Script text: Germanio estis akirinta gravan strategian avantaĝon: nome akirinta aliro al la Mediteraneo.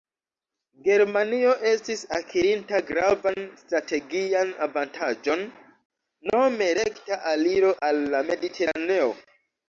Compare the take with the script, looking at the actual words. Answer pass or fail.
fail